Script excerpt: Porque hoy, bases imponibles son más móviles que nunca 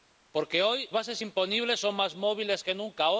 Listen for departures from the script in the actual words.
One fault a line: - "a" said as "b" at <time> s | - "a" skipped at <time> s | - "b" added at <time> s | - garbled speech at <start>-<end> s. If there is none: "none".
none